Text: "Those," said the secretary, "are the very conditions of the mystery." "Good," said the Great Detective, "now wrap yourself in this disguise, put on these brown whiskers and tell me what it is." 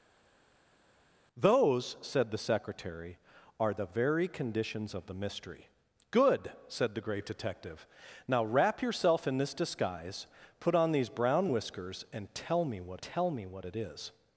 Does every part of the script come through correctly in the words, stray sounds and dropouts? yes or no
no